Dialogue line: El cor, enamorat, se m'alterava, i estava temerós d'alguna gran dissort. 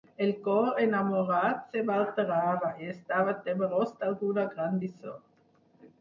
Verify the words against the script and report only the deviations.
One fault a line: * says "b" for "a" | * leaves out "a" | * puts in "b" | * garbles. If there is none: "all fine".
all fine